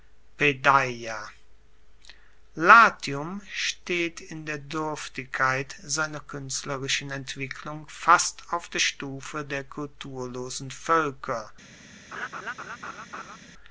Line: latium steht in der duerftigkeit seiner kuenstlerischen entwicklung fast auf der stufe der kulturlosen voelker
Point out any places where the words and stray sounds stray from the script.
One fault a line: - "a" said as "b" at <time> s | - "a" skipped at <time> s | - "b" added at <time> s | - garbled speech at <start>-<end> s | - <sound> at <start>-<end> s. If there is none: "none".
- laugh at 12.1-13.4 s